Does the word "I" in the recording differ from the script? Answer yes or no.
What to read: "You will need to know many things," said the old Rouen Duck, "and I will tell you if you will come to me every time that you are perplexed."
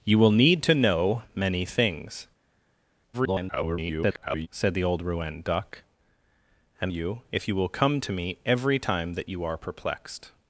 yes